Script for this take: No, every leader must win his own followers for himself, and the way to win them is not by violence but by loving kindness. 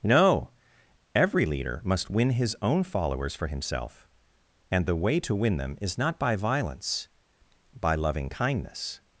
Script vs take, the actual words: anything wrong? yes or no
yes